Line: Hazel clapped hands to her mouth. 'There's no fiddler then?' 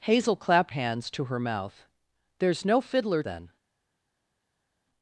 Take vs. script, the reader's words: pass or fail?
pass